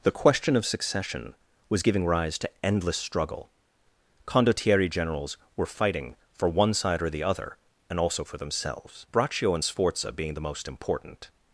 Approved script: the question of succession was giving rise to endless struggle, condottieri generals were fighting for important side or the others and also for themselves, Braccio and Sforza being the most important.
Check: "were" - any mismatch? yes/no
no